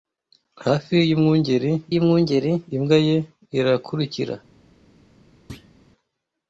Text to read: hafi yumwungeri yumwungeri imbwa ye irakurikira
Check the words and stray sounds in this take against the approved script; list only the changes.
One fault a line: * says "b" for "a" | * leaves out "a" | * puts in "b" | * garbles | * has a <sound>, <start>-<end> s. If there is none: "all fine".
* has a thud, 5.5-5.7 s